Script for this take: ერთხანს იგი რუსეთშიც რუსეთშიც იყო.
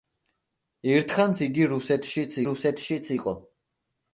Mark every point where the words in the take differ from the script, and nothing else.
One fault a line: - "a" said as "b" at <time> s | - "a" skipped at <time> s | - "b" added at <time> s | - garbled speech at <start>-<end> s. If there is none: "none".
none